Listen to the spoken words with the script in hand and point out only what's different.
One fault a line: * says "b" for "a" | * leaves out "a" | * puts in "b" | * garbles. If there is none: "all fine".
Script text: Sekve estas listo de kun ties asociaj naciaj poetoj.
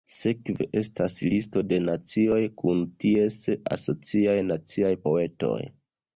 * puts in "nacioj"